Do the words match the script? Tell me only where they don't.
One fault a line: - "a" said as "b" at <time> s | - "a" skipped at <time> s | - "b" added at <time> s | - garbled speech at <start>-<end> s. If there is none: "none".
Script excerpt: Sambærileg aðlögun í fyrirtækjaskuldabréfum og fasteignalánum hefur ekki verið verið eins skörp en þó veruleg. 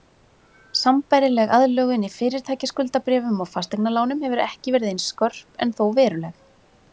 - "verið" skipped at 4.9 s